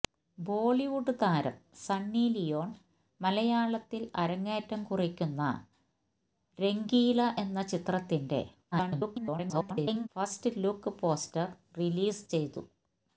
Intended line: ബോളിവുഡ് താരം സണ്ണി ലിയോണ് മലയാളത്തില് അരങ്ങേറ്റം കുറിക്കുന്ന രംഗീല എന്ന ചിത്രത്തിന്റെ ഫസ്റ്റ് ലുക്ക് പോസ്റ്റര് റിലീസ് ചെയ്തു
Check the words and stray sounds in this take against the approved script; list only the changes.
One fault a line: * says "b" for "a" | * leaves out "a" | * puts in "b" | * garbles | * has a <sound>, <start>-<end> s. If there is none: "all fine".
* garbles